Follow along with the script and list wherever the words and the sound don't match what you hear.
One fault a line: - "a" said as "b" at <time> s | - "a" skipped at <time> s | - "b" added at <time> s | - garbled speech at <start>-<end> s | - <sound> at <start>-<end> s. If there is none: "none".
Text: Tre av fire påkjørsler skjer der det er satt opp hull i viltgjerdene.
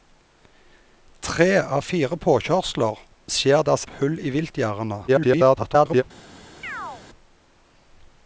- "der" skipped at 3.6 s
- "satt" skipped at 3.8 s
- garbled speech at 5.1-6.0 s
- chirp at 6.6-7.0 s